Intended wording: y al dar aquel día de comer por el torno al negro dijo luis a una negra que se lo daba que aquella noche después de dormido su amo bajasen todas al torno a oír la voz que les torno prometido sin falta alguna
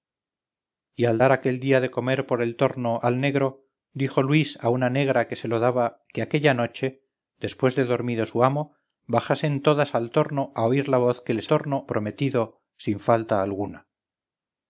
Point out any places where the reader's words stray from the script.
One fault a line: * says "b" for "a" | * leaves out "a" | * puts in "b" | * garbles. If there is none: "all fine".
all fine